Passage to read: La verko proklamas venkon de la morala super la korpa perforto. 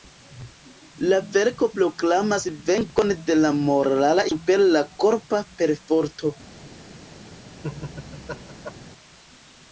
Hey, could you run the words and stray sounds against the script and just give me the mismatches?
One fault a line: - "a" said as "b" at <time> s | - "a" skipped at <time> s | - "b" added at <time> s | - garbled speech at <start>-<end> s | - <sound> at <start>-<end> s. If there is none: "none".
- laugh at 7.6-8.7 s